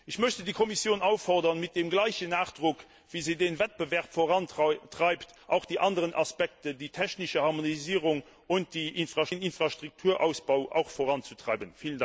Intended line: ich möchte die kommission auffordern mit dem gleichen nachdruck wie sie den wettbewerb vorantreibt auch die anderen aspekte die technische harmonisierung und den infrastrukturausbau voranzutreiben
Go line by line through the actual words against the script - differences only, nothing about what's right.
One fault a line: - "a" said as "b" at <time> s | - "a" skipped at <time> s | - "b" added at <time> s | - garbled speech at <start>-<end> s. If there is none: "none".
none